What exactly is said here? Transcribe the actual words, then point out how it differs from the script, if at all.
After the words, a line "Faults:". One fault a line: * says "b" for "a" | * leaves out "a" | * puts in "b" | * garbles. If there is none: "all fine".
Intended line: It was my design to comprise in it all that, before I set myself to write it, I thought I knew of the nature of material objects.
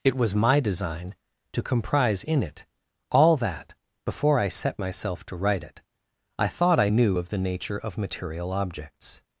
It was my design to comprise in it all that, before I set myself to write it, I thought I knew of the nature of material objects.
Faults:
all fine